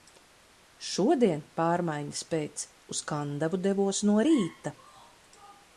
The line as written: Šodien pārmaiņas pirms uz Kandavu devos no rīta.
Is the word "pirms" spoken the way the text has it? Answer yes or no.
no